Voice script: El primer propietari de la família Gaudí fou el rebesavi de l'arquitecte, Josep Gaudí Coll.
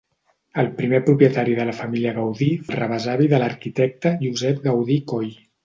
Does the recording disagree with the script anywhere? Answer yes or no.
yes